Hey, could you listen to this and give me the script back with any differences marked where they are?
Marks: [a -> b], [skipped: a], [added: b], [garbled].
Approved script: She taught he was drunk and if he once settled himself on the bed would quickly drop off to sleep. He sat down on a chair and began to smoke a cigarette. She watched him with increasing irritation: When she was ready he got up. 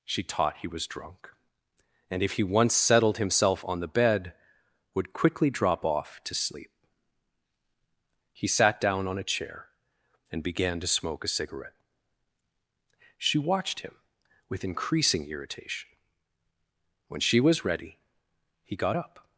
She taught he was drunk and if he once settled himself on the bed would quickly drop off to sleep. He sat down on a chair and began to smoke a cigarette. She watched him with increasing irritation: When she was ready he got up.